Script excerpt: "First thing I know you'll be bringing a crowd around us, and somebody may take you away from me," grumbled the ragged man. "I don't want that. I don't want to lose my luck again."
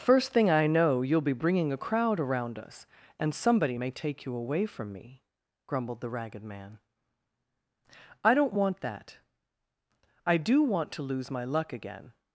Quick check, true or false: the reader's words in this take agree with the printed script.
false